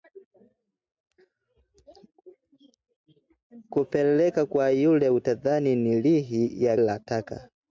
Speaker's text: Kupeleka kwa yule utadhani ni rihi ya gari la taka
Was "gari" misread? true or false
true